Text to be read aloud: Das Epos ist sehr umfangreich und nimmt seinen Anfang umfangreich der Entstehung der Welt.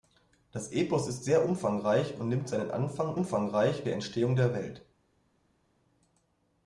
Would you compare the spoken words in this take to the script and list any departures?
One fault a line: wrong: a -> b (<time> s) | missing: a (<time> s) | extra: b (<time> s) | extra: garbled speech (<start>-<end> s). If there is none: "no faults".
no faults